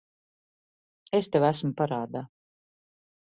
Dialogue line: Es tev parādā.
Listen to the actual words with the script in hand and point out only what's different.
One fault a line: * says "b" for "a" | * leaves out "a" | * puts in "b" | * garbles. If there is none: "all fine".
* puts in "esmu"